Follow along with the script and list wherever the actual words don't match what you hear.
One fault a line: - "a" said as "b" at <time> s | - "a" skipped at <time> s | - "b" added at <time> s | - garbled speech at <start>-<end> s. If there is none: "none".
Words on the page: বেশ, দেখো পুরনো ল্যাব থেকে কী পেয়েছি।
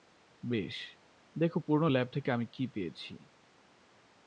- "আমি" added at 2.3 s